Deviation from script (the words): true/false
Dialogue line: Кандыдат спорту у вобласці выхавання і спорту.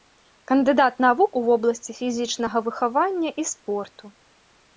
true